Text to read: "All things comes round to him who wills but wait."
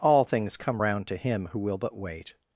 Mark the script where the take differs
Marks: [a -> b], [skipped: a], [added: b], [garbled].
"All things [comes -> come] round to him who [wills -> will] but wait."